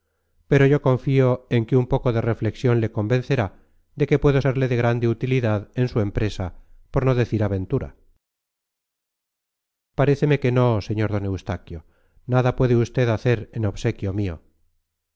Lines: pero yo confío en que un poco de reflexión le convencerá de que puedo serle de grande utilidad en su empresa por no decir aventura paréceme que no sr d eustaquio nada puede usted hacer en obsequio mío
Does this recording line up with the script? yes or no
yes